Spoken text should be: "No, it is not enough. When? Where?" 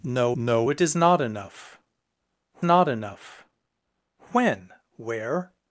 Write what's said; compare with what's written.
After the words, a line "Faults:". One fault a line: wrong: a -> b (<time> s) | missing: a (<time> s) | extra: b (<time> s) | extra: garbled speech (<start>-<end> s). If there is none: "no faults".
"No no, it is not enough not enough. When? Where?"
Faults:
extra: no (0.3 s)
extra: not enough (2.6 s)